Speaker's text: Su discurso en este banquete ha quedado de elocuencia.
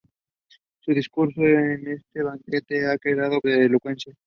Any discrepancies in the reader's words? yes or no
no